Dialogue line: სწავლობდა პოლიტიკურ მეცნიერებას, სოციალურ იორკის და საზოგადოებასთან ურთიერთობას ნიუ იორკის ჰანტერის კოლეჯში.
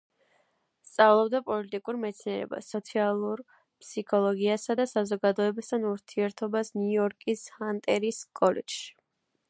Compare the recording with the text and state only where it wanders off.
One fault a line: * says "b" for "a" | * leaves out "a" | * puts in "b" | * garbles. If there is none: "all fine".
* says "ფსიქოლოგიასა" for "იორკის"